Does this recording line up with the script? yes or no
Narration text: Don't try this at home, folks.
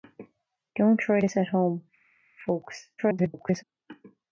no